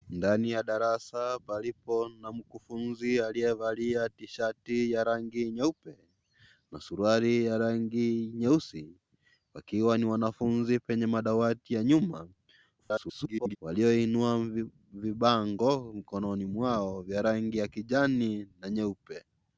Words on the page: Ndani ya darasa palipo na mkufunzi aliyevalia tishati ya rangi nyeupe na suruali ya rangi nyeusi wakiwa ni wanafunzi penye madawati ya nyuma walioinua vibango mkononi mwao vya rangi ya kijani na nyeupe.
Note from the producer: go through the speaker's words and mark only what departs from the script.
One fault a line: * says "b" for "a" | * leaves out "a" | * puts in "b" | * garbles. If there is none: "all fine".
* garbles